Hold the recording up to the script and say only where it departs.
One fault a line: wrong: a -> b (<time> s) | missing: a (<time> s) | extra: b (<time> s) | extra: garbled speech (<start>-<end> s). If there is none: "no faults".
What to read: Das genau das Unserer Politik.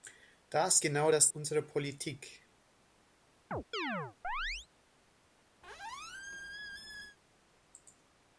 no faults